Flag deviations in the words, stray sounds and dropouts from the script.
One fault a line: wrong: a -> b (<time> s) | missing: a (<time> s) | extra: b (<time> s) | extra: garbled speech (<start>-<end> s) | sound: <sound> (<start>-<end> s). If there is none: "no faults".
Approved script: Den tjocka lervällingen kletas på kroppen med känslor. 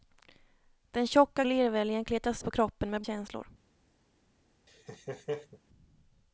sound: laugh (4.7-5.6 s)